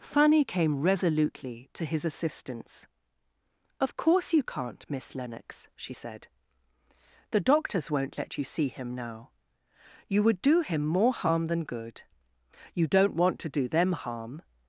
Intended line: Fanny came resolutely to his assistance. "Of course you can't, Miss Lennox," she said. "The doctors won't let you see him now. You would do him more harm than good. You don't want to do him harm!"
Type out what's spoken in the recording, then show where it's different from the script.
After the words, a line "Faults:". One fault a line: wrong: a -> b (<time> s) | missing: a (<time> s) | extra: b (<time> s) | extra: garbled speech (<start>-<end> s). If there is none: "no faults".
Fanny came resolutely to his assistance. "Of course you can't, Miss Lennox," she said. "The doctors won't let you see him now. You would do him more harm than good. You don't want to do them harm!"
Faults:
wrong: him -> them (13.7 s)